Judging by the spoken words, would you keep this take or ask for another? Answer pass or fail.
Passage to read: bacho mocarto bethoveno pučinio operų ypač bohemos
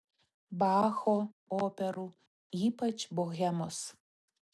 fail